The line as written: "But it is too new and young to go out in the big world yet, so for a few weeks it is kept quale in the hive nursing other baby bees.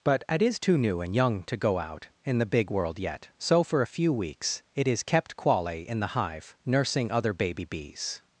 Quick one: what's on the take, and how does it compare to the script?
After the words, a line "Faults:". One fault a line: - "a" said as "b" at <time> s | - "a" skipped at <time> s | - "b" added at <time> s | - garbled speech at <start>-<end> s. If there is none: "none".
"But it is too new and young to go out in the big world yet, so for a few weeks it is kept quale in the hive nursing other baby bees.
Faults:
none